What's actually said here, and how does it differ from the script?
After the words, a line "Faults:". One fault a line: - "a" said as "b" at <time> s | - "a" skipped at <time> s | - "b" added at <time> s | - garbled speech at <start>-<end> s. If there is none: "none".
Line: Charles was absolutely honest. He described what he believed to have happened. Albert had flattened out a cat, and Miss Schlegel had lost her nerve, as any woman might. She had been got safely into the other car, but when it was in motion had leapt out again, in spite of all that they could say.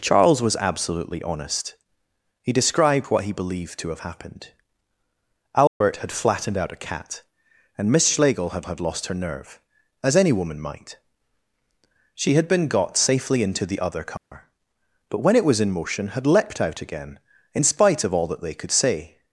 Charles was absolutely honest. He described what he believed to have happened. Albert had flattened out a cat, and Miss Schlegel had had lost her nerve, as any woman might. She had been got safely into the other car, but when it was in motion had leapt out again, in spite of all that they could say.
Faults:
- "had" added at 8.6 s